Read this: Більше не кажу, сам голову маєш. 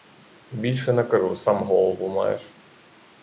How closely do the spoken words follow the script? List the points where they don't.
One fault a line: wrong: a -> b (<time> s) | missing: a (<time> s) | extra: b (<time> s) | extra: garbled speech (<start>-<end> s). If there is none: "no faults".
no faults